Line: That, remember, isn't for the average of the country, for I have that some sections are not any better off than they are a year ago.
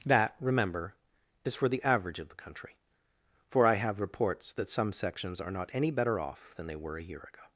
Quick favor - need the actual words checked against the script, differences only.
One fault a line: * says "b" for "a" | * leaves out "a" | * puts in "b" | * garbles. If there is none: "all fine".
* says "is" for "isn't"
* puts in "reports"
* says "were" for "are"